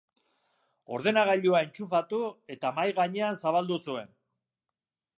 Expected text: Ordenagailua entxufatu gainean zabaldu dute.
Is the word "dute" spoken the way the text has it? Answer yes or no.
no